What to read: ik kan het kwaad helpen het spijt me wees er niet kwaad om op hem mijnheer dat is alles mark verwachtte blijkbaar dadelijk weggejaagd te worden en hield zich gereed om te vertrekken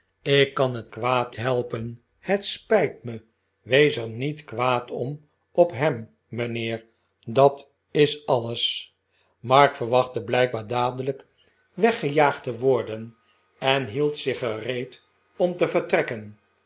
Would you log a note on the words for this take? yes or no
no